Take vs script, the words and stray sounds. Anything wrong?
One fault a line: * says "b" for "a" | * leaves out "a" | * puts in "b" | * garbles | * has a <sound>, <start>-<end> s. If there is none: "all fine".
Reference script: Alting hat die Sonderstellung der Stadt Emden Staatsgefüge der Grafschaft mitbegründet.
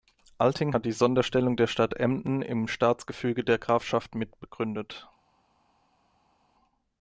* puts in "im"